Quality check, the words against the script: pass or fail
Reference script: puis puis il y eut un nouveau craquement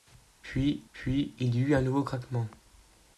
pass